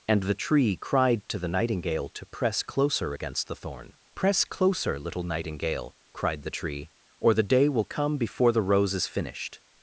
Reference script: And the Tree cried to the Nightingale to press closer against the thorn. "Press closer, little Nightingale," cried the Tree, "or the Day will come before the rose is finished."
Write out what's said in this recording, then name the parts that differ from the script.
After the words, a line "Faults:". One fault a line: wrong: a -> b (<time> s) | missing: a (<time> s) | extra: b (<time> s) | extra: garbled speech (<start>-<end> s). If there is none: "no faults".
And the Tree cried to the Nightingale to press closer against the thorn. "Press closer, little Nightingale," cried the Tree, "or the Day will come before the rose is finished."
Faults:
no faults